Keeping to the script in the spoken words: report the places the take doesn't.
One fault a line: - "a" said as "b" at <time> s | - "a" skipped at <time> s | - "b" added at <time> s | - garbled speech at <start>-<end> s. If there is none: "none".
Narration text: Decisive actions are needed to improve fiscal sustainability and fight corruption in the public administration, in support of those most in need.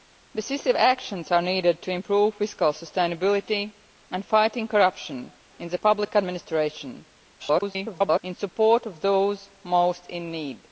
- garbled speech at 7.4-8.2 s